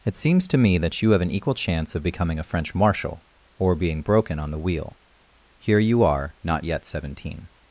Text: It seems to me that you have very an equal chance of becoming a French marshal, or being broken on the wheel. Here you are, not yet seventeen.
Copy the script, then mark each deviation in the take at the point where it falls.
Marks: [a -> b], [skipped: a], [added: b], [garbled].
It seems to me that you have [skipped: very] an equal chance of becoming a French marshal, or being broken on the wheel. Here you are, not yet seventeen.